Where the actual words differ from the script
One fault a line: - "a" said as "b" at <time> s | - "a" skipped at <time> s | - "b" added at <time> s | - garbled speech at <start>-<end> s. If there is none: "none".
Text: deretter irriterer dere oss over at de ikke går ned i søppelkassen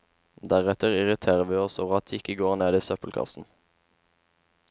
- "dere" said as "vi" at 1.4 s